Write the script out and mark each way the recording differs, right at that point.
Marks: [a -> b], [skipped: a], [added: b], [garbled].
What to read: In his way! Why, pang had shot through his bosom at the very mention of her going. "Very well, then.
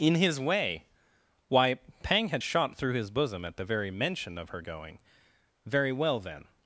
In his way! Why, pang had shot through his bosom at the very mention of her going. "Very well, then.